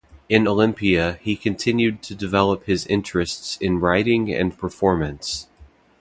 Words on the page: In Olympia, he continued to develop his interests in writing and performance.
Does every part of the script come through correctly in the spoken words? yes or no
yes